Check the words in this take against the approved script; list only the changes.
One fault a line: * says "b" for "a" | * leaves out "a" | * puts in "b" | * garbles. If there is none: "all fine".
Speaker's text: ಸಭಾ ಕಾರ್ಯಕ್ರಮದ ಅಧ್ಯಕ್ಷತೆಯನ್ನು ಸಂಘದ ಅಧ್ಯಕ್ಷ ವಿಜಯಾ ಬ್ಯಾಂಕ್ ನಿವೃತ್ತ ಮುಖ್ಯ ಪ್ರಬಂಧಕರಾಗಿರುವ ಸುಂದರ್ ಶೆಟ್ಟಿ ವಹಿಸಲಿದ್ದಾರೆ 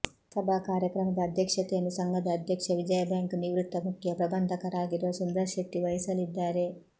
all fine